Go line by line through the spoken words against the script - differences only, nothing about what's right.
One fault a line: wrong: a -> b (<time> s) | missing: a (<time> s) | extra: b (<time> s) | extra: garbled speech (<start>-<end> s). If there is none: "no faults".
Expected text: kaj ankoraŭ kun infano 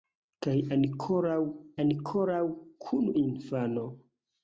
extra: ankoraŭ (1.8 s)